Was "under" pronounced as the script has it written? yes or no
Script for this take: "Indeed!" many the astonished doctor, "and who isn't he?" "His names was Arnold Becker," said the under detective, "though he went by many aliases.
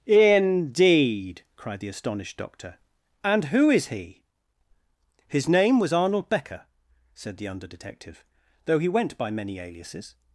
yes